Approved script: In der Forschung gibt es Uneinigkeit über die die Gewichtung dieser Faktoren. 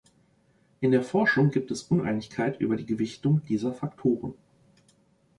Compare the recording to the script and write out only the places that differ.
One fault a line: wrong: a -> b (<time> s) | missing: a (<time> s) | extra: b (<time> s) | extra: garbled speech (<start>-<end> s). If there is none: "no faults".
missing: die (2.9 s)